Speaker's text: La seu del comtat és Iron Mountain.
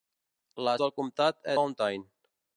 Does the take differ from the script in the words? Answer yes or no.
yes